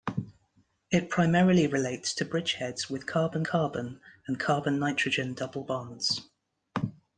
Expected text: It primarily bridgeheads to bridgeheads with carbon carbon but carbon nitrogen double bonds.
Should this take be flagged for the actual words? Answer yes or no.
yes